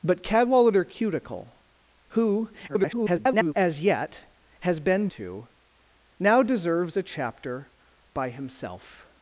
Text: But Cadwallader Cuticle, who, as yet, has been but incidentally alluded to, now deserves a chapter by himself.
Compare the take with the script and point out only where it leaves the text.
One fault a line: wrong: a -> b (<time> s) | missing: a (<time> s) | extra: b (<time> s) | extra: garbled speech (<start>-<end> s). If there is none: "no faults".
extra: garbled speech (2.7-3.5 s)
missing: but incidentally alluded (5.1 s)